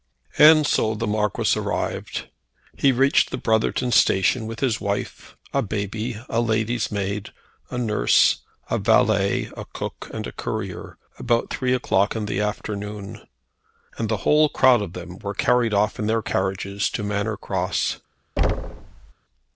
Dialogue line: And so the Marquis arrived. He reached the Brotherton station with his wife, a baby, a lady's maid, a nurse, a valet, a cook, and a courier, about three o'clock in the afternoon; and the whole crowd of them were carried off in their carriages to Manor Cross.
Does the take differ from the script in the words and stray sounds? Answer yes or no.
yes